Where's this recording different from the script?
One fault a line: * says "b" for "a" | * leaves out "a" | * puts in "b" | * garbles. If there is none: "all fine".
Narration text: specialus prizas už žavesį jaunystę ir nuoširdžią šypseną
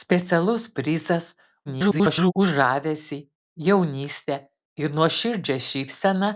* garbles